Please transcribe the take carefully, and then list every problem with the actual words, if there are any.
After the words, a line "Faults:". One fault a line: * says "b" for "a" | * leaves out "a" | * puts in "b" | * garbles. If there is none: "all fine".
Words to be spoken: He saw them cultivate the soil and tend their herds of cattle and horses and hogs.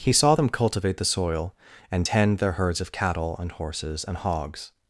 He saw them cultivate the soil and tend their herds of cattle and horses and hogs.
Faults:
all fine